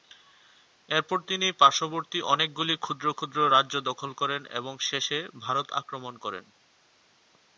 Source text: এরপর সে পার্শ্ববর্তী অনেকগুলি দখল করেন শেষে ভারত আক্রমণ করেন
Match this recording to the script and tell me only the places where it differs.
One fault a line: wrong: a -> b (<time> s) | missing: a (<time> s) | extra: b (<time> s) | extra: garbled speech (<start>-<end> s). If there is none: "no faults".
wrong: সে -> তিনি (1.3 s)
extra: ক্ষুদ্র ক্ষুদ্র রাজ্য (2.8 s)
extra: এবং (4.5 s)